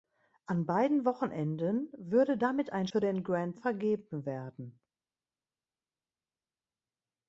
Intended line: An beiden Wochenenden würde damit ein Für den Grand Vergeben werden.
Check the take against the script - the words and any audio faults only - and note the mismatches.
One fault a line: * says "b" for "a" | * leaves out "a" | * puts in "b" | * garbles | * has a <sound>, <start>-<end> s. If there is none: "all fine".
all fine